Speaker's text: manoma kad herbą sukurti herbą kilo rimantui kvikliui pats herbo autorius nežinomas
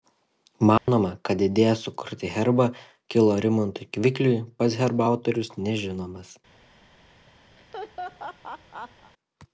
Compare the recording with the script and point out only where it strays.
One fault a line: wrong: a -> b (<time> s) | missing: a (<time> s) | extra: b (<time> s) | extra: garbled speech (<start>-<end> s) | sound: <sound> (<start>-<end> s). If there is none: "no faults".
sound: dropout (0.8-0.9 s)
wrong: herbą -> idėja (1.5 s)
sound: laugh (7.6-9.1 s)